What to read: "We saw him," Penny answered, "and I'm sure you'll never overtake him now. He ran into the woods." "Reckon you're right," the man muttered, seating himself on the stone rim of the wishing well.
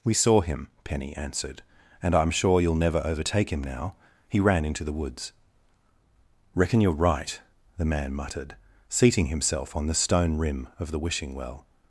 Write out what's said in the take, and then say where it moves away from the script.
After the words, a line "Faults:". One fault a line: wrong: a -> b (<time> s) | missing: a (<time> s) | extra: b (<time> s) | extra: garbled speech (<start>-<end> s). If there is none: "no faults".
"We saw him," Penny answered, "and I'm sure you'll never overtake him now. He ran into the woods." "Reckon you're right," the man muttered, seating himself on the stone rim of the wishing well.
Faults:
no faults